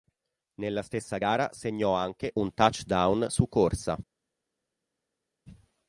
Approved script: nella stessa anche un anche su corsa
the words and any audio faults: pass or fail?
fail